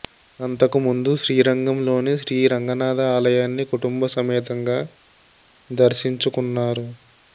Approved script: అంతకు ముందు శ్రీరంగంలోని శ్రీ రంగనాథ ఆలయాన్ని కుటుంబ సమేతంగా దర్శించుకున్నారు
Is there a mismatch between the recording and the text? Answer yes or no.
no